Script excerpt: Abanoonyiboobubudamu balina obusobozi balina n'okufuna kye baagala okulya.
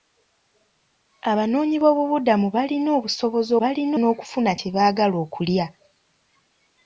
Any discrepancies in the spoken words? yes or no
no